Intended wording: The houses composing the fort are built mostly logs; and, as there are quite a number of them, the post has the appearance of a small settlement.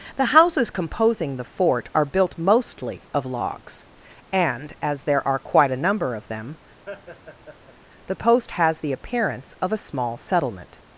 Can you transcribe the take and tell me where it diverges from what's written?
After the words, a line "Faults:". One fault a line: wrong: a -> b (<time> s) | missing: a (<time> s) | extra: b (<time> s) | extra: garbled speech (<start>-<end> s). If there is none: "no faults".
The houses composing the fort are built mostly of logs; and, as there are quite a number of them, the post has the appearance of a small settlement.
Faults:
extra: of (3.1 s)